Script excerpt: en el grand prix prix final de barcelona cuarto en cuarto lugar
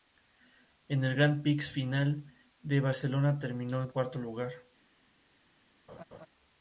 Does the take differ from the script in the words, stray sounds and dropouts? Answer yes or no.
yes